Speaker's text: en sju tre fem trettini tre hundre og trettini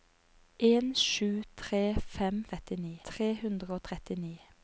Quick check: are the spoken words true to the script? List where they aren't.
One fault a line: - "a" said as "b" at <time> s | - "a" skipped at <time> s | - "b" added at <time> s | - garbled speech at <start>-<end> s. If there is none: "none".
none